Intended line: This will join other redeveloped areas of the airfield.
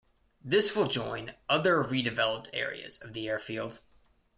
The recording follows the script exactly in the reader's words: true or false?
true